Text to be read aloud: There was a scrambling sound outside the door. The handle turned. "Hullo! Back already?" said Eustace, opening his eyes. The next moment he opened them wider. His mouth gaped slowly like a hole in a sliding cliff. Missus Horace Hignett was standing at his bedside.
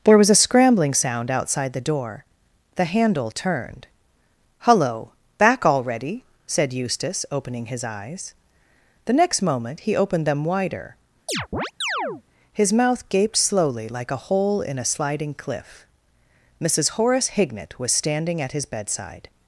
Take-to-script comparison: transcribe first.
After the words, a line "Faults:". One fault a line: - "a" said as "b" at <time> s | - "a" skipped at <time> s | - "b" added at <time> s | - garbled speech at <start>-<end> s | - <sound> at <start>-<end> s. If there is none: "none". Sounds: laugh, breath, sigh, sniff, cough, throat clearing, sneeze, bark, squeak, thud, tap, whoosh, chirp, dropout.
There was a scrambling sound outside the door. The handle turned. "Hullo! Back already?" said Eustace, opening his eyes. The next moment he opened them wider. His mouth gaped slowly like a hole in a sliding cliff. Missus Horace Hignett was standing at his bedside.
Faults:
- chirp at 11.3-12.2 s